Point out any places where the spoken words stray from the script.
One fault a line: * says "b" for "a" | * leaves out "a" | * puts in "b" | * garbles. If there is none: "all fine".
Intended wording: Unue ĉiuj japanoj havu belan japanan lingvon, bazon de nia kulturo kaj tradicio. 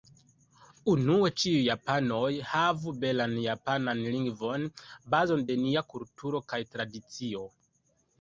all fine